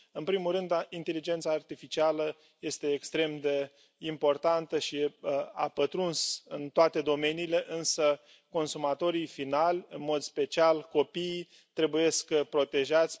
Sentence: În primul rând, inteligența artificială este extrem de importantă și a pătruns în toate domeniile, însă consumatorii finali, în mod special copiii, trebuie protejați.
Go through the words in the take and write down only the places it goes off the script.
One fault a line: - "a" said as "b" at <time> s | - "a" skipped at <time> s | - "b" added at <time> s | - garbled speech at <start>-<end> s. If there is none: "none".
none